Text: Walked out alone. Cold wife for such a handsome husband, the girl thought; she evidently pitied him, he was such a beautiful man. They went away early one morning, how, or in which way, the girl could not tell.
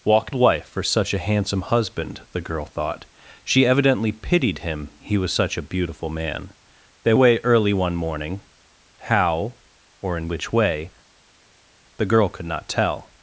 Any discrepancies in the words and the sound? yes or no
yes